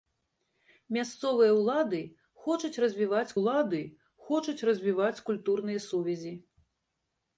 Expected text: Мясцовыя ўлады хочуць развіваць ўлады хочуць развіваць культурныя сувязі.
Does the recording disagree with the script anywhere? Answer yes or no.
no